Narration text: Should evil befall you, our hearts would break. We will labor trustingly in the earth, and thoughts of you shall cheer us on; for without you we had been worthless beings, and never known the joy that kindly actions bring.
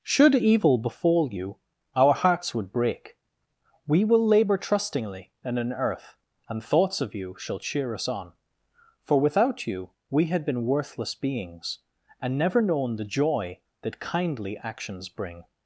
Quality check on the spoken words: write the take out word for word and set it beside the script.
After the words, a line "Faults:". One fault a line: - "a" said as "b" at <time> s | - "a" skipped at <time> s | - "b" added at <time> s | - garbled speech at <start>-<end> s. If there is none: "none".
Should evil befall you, our hearts would break. We will labor trustingly in an earth, and thoughts of you shall cheer us on; for without you we had been worthless beings, and never known the joy that kindly actions bring.
Faults:
- "the" said as "an" at 5.6 s